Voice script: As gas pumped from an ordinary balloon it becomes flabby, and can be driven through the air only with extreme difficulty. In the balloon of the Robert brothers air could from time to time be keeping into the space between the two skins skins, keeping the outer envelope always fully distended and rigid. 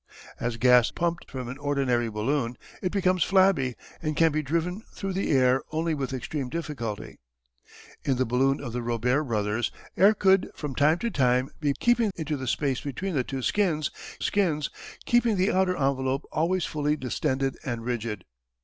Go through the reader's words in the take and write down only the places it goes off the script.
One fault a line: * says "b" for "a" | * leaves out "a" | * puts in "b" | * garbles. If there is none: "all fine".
all fine